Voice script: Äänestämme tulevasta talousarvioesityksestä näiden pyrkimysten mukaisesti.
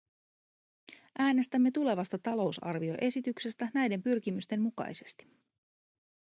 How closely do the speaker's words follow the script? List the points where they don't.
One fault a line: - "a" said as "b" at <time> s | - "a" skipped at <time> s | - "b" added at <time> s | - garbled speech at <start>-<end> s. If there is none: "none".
none